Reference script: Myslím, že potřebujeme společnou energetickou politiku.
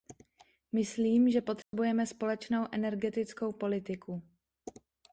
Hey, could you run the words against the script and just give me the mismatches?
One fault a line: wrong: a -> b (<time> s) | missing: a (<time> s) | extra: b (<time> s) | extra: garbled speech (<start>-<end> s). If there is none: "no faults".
no faults